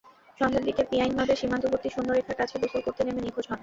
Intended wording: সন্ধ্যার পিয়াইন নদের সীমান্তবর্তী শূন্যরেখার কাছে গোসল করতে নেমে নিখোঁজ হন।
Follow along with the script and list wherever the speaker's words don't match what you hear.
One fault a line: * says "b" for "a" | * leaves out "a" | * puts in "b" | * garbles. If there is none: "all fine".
* puts in "দিকে"